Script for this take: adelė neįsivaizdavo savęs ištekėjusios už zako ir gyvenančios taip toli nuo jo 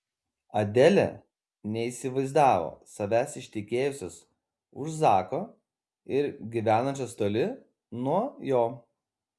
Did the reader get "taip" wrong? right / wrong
wrong